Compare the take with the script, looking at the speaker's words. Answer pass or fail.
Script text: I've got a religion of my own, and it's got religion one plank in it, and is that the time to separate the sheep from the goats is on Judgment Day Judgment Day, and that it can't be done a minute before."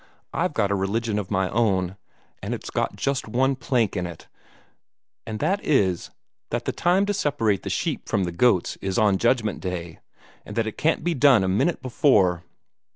fail